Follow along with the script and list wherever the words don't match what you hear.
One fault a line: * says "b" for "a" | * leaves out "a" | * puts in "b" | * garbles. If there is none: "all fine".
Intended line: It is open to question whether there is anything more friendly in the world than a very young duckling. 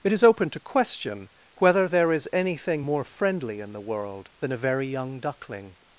all fine